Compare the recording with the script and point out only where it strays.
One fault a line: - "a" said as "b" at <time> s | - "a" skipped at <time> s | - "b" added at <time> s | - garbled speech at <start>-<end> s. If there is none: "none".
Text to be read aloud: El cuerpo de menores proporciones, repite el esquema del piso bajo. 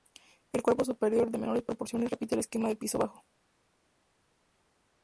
- "superior" added at 0.8 s